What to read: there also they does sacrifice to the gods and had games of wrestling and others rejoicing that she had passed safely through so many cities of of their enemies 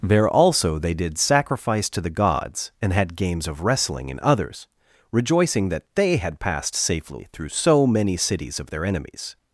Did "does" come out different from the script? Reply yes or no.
yes